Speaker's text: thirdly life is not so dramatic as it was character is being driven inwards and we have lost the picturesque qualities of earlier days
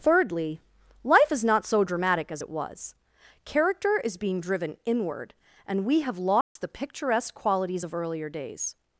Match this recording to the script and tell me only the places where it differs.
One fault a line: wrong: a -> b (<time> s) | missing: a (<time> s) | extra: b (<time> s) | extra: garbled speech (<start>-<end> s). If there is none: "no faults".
wrong: inwards -> inward (4.9 s)